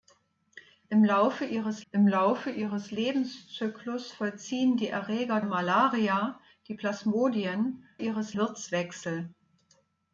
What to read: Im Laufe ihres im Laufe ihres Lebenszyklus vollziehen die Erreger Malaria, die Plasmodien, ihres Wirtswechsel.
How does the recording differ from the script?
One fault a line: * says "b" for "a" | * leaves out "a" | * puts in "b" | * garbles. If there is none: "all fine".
all fine